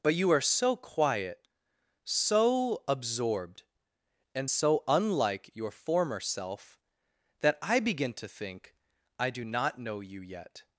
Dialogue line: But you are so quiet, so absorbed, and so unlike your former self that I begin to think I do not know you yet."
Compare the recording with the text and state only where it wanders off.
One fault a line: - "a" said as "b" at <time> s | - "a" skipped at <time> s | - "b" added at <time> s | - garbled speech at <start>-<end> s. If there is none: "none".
none